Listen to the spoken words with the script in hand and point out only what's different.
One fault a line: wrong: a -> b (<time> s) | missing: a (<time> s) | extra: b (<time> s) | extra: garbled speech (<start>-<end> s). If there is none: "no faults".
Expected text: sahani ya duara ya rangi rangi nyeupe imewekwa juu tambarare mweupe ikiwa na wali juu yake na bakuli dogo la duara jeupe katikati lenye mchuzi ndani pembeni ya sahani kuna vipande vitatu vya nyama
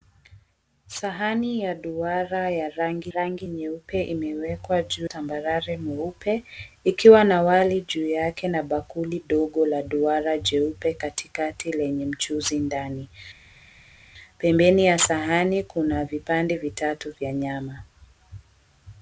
no faults